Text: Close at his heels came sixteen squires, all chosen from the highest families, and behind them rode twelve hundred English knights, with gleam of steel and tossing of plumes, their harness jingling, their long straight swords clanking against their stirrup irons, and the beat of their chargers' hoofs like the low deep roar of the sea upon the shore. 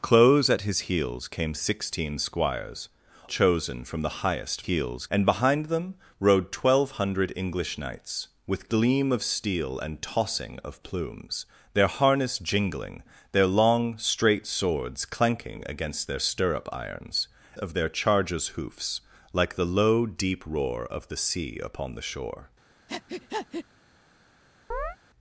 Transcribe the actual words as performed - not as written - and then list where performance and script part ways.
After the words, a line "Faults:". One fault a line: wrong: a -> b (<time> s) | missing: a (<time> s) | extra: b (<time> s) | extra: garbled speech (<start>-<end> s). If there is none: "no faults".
Close at his heels came sixteen squires, chosen from the highest heels, and behind them rode twelve hundred English knights, with gleam of steel and tossing of plumes, their harness jingling, their long straight swords clanking against their stirrup irons, of their chargers' hoofs like the low deep roar of the sea upon the shore.
Faults:
missing: all (2.9 s)
wrong: families -> heels (4.6 s)
missing: and the beat (17.3 s)